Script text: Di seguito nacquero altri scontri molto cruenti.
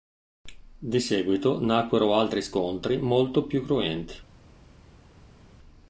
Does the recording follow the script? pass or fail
fail